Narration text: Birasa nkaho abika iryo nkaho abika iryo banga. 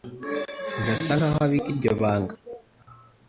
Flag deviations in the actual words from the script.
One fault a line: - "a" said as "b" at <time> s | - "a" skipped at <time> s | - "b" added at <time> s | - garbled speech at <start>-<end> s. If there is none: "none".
- "nkaho abika iryo" skipped at 1.9 s